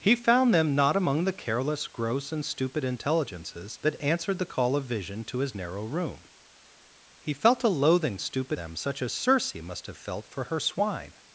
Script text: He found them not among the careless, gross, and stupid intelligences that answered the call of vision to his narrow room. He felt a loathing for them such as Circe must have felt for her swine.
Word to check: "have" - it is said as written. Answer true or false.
true